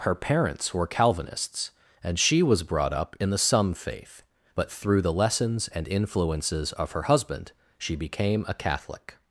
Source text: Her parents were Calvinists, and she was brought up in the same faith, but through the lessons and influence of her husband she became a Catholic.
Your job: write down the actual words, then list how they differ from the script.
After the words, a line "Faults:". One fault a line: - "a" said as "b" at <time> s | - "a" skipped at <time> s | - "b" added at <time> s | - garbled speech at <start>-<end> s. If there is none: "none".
Her parents were Calvinists, and she was brought up in the some faith, but through the lessons and influences of her husband she became a Catholic.
Faults:
- "same" said as "some" at 3.4 s
- "influence" said as "influences" at 5.9 s